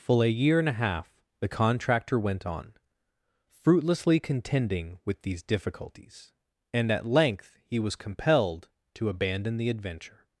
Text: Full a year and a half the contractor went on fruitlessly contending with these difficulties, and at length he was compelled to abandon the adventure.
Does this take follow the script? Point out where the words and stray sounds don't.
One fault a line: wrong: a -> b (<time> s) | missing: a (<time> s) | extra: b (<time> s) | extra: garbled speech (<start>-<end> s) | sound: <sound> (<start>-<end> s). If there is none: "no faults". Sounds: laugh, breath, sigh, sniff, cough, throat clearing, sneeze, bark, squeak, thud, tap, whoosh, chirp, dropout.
no faults